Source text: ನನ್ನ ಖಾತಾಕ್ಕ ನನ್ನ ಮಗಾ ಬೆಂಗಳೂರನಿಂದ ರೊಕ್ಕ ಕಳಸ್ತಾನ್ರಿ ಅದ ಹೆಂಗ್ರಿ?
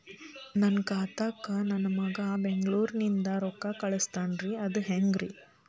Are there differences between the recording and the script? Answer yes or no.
no